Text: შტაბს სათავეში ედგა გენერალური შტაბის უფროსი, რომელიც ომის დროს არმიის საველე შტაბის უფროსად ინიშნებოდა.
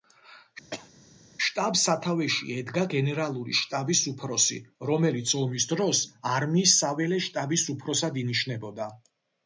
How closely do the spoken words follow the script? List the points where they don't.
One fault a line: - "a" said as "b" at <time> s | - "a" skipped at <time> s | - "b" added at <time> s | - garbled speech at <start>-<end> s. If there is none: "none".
none